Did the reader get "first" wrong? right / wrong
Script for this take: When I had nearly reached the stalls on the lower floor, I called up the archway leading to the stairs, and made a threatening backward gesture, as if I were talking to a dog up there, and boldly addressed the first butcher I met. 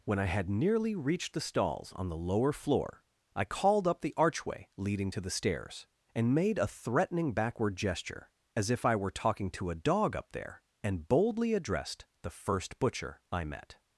right